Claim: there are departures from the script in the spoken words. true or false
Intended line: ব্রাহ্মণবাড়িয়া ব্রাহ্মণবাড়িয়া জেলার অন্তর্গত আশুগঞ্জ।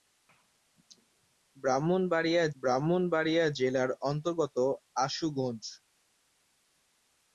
false